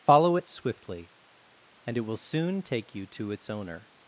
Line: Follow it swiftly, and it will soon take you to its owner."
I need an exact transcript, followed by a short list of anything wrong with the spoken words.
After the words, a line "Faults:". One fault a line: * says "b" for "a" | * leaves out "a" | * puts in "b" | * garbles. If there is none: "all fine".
Follow it swiftly, and it will soon take you to its owner."
Faults:
all fine